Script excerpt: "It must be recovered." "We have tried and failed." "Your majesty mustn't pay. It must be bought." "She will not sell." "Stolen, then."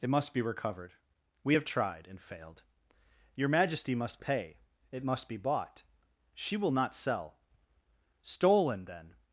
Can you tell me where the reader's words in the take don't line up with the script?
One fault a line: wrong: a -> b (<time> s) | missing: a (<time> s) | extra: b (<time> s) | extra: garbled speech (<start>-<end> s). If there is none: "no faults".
wrong: mustn't -> must (3.9 s)